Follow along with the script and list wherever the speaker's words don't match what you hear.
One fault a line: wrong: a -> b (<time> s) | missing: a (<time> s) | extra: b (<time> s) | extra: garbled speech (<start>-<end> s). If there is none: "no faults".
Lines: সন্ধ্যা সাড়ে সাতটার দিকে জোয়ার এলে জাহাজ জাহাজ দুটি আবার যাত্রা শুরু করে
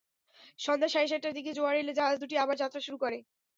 missing: জাহাজ (2.2 s)